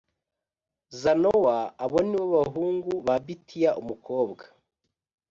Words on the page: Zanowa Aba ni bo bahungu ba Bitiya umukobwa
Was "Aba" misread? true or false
true